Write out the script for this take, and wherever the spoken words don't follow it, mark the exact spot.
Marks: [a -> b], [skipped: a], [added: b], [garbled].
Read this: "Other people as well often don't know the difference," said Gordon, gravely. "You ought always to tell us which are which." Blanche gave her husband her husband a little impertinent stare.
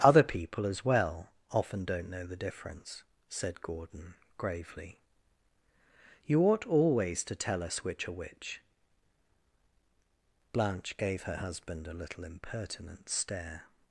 "Other people as well often don't know the difference," said Gordon, gravely. "You ought always to tell us which are which." Blanche gave her husband [skipped: her husband] a little impertinent stare.